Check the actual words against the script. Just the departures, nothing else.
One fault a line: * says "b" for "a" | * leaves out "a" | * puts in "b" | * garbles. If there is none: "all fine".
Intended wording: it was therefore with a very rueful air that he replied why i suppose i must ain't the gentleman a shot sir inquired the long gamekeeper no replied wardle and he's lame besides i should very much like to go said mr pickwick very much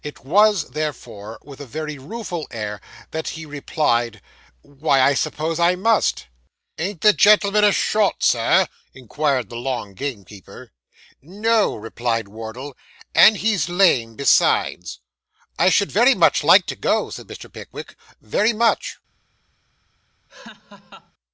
all fine